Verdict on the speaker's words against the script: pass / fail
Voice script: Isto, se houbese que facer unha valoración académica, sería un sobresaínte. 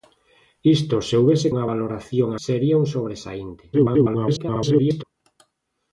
fail